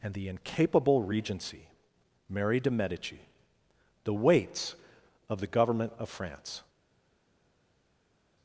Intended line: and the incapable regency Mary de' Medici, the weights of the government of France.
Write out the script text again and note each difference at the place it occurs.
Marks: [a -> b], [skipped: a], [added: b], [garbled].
and the incapable regency Mary de' Medici, the weights of the government of France.